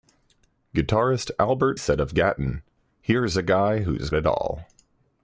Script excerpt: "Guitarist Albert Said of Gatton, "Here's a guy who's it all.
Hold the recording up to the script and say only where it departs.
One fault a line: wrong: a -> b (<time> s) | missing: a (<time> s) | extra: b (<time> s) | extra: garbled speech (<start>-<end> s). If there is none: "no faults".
no faults